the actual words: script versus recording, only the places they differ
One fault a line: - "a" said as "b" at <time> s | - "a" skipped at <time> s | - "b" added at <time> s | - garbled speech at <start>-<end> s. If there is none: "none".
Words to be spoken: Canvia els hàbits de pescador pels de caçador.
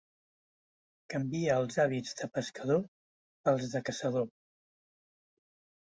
none